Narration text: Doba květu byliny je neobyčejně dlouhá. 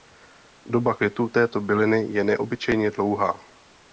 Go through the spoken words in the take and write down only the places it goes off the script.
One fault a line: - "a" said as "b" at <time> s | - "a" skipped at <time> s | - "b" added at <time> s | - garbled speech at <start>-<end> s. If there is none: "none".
- "této" added at 1.3 s